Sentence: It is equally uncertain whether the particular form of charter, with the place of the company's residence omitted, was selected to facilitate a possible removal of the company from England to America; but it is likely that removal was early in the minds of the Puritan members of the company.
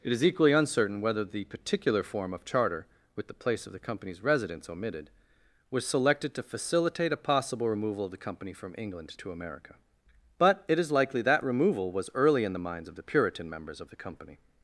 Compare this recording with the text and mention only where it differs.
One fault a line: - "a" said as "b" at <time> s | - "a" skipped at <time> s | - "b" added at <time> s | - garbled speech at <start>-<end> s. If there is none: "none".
none